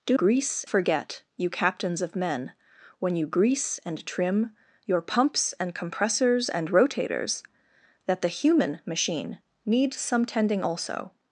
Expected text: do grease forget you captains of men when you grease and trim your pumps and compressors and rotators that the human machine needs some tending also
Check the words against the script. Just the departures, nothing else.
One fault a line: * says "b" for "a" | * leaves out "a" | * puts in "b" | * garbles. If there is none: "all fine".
all fine